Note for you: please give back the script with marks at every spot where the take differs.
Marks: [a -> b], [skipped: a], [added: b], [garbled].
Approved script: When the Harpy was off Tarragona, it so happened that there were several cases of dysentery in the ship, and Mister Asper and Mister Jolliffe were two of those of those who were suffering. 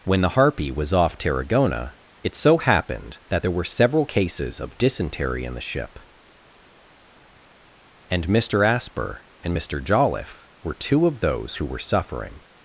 When the Harpy was off Tarragona, it so happened that there were several cases of dysentery in the ship, and Mister Asper and Mister Jolliffe were two of those [skipped: of those] who were suffering.